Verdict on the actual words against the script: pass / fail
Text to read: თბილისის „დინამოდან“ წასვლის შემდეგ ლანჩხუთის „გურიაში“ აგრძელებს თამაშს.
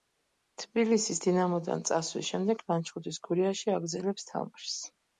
pass